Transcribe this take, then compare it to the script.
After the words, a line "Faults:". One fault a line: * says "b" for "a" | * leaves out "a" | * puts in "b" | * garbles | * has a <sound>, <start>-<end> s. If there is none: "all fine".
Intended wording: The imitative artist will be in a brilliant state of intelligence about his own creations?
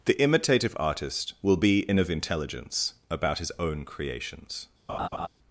The imitative artist will be in of intelligence about his own creations?
Faults:
* leaves out "a brilliant state"
* has a laugh, 4.9-5.3 s